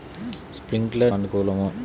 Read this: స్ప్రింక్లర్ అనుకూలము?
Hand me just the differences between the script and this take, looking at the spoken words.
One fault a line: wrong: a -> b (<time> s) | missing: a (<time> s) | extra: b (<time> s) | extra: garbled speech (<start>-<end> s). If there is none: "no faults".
no faults